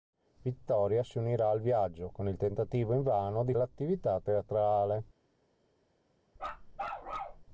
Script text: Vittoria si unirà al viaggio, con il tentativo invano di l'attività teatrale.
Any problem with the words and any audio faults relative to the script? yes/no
yes